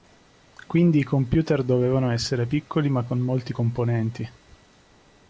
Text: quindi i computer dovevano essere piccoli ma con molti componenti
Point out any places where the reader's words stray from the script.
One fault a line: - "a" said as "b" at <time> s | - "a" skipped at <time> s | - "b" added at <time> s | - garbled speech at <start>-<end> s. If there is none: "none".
none